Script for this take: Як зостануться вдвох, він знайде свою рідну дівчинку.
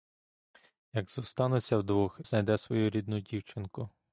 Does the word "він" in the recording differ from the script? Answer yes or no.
yes